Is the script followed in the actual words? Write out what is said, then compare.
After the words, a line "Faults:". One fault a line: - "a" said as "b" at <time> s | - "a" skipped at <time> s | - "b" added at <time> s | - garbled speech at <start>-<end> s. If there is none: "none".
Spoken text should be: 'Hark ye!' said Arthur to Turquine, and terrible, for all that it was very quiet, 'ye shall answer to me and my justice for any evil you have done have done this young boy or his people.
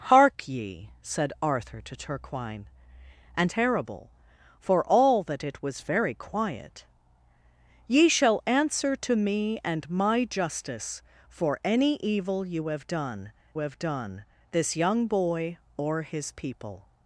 'Hark ye!' said Arthur to Turquine, and terrible, for all that it was very quiet, 'ye shall answer to me and my justice for any evil you have done have done this young boy or his people.
Faults:
none